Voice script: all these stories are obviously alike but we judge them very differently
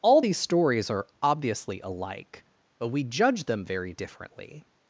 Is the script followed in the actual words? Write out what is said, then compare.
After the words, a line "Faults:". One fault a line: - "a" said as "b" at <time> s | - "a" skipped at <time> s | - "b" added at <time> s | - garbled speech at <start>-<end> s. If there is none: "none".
all these stories are obviously alike but we judge them very differently
Faults:
none